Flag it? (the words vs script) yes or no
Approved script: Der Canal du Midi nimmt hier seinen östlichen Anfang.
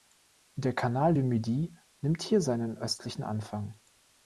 no